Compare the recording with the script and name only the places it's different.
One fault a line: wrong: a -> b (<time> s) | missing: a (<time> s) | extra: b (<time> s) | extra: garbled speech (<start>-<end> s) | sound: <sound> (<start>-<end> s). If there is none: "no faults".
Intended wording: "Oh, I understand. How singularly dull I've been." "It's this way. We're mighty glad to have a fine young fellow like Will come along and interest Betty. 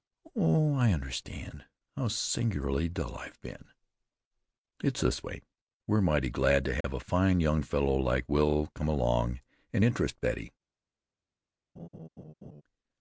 sound: dropout (6.8-6.8 s)
sound: laugh (11.8-12.6 s)